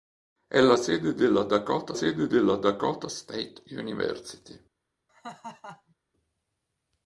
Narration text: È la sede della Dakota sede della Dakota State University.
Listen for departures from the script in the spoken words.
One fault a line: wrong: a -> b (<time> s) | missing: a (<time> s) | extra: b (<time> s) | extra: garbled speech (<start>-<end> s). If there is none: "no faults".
no faults